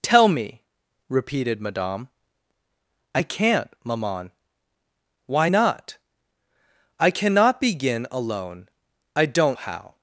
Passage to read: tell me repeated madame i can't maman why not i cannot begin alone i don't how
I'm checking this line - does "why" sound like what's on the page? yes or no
yes